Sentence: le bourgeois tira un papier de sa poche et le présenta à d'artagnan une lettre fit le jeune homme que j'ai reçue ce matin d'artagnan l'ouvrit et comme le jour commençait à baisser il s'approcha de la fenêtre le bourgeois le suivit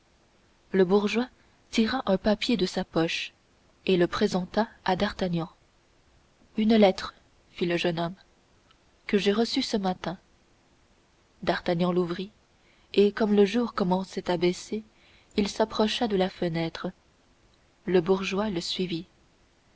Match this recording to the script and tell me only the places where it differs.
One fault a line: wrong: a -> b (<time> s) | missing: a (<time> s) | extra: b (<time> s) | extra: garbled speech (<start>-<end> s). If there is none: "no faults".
no faults